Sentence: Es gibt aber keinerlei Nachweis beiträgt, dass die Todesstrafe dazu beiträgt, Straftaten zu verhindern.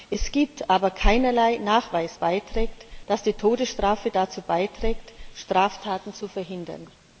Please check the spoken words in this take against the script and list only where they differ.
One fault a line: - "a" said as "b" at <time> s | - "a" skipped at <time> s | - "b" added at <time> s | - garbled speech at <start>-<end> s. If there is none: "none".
none